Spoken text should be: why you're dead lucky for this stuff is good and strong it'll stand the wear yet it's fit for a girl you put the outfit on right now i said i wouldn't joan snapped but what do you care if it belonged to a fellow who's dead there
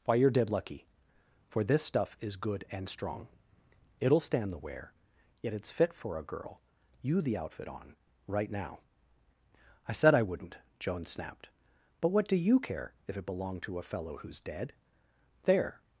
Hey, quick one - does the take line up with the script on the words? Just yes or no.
no